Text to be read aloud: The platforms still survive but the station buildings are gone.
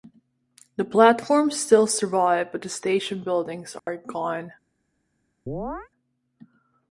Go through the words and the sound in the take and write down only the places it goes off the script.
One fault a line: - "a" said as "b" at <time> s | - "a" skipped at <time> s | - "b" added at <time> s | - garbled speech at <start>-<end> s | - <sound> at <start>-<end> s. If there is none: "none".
- dropout at 3.8-3.9 s
- chirp at 5.5-5.9 s